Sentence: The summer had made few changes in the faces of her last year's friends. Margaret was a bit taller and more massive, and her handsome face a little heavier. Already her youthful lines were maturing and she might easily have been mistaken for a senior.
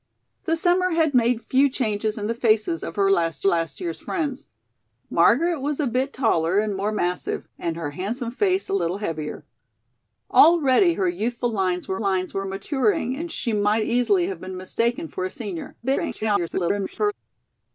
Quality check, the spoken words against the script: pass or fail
fail